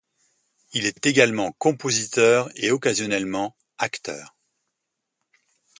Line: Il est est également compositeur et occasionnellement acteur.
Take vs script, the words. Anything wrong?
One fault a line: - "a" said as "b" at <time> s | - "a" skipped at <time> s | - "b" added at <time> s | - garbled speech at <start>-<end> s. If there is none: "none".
none